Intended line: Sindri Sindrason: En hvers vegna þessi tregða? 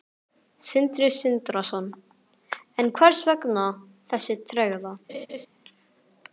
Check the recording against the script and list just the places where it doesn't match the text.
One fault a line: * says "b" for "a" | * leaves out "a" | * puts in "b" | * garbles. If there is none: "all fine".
all fine